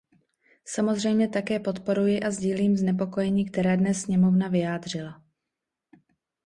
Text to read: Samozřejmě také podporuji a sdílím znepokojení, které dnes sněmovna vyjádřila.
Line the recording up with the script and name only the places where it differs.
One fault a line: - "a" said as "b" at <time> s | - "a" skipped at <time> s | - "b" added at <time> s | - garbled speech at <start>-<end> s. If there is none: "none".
none